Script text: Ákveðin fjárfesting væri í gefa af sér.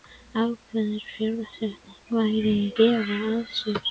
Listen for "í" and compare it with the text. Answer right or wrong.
right